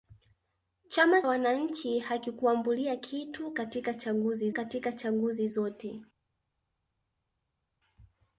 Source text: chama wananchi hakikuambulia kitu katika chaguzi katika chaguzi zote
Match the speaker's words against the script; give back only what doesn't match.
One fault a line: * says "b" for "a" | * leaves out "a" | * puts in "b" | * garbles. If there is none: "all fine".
all fine